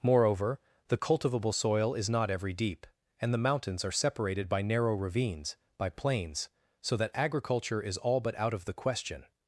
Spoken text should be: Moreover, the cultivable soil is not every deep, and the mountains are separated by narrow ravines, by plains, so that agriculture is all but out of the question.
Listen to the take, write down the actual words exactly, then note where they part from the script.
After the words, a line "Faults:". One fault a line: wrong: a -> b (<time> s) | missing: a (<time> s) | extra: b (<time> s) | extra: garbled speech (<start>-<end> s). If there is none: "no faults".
Moreover, the cultivable soil is not every deep, and the mountains are separated by narrow ravines, by plains, so that agriculture is all but out of the question.
Faults:
no faults